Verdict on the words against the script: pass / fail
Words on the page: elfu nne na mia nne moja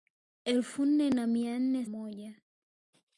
pass